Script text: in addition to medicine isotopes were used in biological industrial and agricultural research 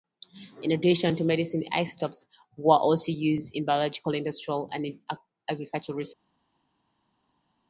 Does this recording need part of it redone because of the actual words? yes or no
yes